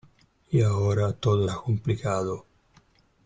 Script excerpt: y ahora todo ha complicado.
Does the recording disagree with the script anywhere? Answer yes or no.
no